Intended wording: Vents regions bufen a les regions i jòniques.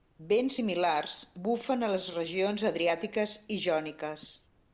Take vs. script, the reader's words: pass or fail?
fail